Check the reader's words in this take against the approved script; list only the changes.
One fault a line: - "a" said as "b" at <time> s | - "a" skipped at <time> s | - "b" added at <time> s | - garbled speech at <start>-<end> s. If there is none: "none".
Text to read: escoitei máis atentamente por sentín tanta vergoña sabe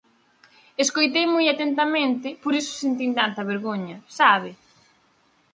- "máis" said as "moi" at 1.3 s
- "iso" added at 2.6 s